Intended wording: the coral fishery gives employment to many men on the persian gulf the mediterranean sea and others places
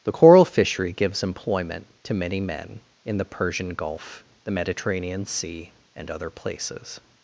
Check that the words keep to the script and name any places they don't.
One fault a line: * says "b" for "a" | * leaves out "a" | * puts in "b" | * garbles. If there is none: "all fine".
* says "in" for "on"
* says "other" for "others"